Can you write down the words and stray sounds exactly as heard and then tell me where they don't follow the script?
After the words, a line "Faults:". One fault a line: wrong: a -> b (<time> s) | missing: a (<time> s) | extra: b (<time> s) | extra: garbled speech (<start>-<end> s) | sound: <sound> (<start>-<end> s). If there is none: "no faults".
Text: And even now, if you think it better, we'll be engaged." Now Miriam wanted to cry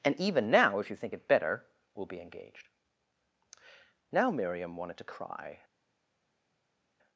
And even now, if you think it better, we'll be engaged." Now Miriam wanted to cry
Faults:
no faults